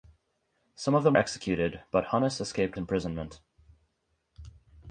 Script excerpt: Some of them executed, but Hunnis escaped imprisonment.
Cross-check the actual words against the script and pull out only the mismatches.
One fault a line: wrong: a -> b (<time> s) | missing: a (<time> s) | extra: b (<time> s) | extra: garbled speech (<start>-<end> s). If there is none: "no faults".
no faults